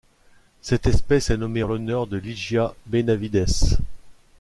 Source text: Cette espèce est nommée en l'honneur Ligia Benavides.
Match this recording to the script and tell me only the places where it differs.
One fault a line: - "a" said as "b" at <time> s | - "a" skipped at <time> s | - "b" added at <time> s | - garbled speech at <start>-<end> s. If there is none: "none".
- "de" added at 2.1 s